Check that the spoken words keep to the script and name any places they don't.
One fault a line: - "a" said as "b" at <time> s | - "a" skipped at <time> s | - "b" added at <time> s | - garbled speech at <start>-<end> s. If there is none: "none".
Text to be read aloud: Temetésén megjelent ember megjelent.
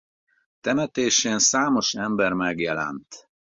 - "megjelent" said as "számos" at 1.4 s